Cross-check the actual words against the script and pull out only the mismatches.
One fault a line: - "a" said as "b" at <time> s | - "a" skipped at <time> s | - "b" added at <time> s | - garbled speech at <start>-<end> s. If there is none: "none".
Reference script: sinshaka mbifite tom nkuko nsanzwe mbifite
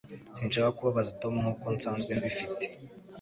- "mbifite" said as "kubabaza" at 0.8 s